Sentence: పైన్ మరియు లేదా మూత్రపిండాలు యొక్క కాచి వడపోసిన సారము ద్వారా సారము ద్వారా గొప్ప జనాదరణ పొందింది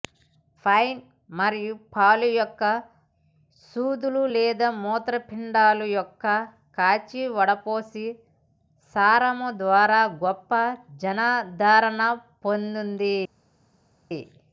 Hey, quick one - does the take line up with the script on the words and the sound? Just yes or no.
no